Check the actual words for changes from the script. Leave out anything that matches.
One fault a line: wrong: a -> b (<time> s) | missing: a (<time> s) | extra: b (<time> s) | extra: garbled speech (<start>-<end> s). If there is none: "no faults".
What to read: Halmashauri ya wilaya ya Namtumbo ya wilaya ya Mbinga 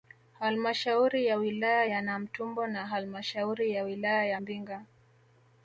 extra: na halmashauri (2.7 s)